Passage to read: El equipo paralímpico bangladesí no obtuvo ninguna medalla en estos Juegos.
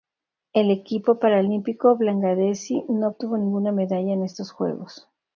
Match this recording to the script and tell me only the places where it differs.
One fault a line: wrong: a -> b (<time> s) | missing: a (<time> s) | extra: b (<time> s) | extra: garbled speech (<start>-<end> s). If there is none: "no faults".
no faults